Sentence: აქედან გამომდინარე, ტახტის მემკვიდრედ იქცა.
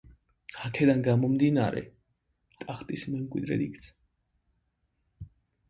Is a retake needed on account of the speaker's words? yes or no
no